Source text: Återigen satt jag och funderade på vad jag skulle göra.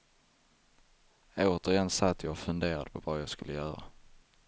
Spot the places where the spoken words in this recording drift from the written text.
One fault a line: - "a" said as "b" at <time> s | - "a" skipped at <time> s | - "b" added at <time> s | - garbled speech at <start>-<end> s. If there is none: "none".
none